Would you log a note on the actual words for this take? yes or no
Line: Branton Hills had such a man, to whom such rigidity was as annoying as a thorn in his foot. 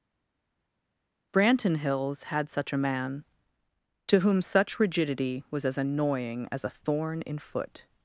yes